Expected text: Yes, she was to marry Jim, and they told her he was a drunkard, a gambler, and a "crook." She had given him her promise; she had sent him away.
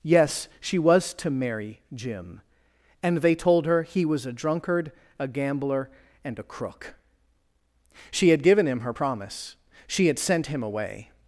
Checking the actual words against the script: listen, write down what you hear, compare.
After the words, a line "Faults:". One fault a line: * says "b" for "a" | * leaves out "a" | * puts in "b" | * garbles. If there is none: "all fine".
Yes, she was to marry Jim, and they told her he was a drunkard, a gambler, and a "crook." She had given him her promise; she had sent him away.
Faults:
all fine